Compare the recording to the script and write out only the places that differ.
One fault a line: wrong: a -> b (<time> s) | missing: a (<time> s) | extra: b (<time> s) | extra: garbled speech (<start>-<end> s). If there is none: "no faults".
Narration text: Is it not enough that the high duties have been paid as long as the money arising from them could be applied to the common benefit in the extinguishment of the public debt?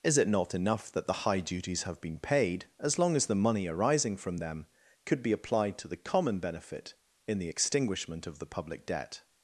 no faults